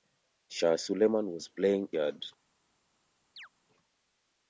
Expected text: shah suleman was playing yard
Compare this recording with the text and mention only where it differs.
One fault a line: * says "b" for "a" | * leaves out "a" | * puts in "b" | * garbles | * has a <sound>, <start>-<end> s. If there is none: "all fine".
* has a chirp, 3.4-3.5 s